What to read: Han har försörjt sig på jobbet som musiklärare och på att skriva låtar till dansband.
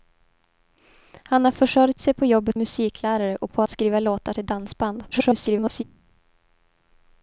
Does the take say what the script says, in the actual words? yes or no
no